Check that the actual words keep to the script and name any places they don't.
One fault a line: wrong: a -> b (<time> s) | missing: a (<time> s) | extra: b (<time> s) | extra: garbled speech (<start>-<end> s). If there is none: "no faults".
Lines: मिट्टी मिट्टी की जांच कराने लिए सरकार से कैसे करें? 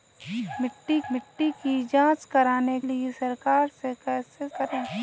no faults